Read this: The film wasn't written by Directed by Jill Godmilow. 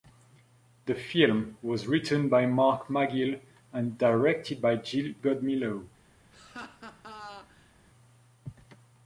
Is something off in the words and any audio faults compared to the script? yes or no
yes